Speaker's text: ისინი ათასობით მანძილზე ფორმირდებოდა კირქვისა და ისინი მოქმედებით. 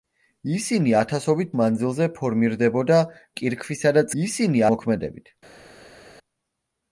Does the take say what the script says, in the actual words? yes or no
yes